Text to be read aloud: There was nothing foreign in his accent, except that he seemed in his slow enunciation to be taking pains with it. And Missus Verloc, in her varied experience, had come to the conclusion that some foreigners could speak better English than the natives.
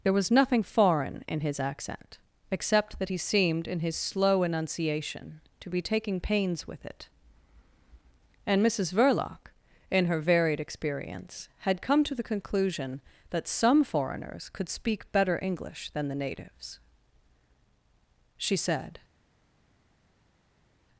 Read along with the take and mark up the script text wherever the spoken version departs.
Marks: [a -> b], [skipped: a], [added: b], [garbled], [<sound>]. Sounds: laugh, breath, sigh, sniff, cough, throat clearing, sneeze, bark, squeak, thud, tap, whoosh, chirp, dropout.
There was nothing foreign in his accent, except that he seemed in his slow enunciation to be taking pains with it. And Missus Verloc, in her varied experience, had come to the conclusion that some foreigners could speak better English than the natives. [added: She said]